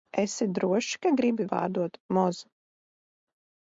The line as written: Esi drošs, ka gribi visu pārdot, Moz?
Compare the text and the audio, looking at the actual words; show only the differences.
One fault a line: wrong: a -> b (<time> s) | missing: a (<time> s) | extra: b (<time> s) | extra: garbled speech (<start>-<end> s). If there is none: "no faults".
missing: visu (1.4 s)